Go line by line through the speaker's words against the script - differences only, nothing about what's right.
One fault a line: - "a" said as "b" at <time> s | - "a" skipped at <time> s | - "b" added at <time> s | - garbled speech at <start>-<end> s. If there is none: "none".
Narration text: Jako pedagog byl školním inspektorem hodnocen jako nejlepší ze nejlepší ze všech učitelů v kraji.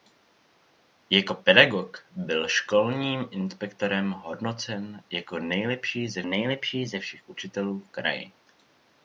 none